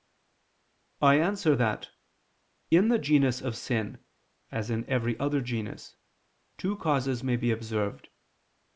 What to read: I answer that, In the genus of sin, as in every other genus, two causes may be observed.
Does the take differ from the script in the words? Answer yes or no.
no